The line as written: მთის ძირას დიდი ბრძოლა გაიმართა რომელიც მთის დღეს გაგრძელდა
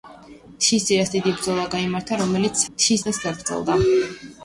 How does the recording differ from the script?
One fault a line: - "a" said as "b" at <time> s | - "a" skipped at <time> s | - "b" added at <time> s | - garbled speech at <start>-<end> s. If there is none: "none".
none